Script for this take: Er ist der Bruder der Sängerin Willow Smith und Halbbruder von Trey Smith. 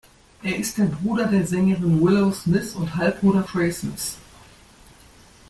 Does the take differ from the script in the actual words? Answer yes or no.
yes